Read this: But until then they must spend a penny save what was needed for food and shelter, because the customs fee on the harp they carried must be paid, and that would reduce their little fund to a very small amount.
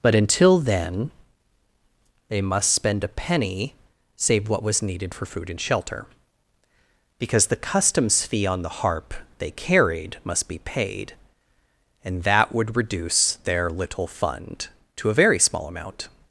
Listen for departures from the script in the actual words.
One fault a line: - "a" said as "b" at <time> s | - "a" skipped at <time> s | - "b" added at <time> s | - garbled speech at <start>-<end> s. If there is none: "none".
none